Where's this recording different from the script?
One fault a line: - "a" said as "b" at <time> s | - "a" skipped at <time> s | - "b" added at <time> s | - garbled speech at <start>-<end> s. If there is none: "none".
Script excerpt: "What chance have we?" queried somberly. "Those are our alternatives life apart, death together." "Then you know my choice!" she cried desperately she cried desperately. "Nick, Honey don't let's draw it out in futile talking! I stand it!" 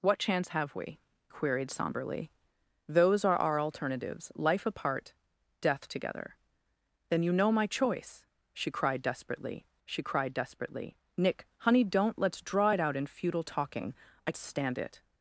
none